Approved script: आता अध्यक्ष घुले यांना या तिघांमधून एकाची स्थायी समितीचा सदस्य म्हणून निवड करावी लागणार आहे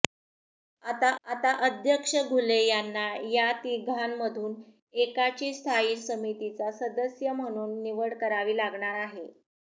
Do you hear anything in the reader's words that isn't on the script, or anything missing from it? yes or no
yes